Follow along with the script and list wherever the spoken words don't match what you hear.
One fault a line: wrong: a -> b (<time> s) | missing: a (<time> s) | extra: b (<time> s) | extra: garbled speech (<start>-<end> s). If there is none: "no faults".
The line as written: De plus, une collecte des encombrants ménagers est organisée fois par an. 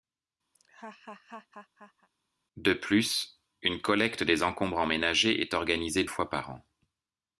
no faults